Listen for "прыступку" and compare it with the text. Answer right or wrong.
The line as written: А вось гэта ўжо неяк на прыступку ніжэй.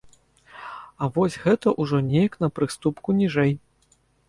right